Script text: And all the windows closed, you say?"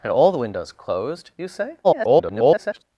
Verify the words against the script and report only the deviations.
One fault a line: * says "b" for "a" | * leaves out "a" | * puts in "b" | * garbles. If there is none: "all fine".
* garbles